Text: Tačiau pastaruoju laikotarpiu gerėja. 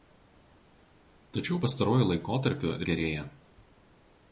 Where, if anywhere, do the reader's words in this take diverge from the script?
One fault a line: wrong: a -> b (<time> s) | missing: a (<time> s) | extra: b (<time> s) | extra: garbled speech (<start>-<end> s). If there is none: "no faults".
no faults